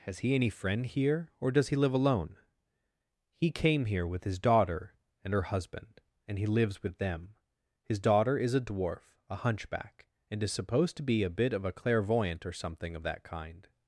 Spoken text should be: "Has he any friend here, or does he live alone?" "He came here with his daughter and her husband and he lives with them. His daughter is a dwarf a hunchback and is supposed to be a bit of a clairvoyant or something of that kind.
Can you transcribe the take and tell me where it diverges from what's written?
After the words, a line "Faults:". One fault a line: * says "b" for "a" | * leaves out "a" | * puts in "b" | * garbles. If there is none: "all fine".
"Has he any friend here, or does he live alone?" "He came here with his daughter and her husband and he lives with them. His daughter is a dwarf a hunchback and is supposed to be a bit of a clairvoyant or something of that kind.
Faults:
all fine